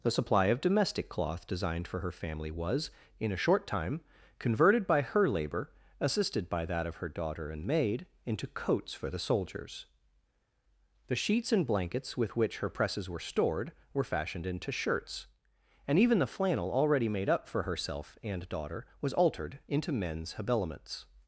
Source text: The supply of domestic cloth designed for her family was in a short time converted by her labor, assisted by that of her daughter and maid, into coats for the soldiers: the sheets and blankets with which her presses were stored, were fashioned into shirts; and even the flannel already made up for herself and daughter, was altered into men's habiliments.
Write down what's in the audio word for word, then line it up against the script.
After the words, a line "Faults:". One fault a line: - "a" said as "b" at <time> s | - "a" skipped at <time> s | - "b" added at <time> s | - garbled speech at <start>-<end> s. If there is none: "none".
The supply of domestic cloth designed for her family was in a short time converted by her labor, assisted by that of her daughter and maid, into coats for the soldiers: the sheets and blankets with which her presses were stored, were fashioned into shirts; and even the flannel already made up for herself and daughter, was altered into men's habiliments.
Faults:
none